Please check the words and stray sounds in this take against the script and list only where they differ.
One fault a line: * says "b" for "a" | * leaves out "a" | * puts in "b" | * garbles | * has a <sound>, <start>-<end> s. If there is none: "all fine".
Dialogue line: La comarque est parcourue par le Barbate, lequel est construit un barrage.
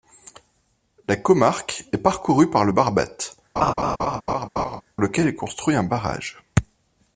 * has a laugh, 3.6-4.8 s